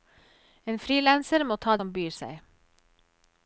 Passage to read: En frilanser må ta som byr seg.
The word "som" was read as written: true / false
true